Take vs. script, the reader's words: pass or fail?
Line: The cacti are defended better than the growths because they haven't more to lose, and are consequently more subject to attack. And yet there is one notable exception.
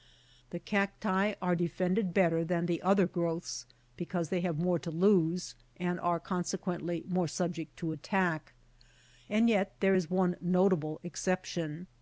fail